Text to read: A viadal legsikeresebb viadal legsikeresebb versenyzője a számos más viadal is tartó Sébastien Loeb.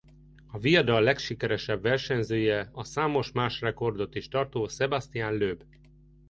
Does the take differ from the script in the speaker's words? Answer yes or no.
yes